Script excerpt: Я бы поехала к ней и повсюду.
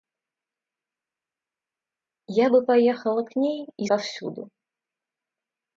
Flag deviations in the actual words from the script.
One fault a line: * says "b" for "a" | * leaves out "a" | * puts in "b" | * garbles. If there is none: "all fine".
all fine